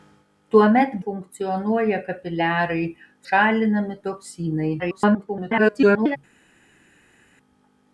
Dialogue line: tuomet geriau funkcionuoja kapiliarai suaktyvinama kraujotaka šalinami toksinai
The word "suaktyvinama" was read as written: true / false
false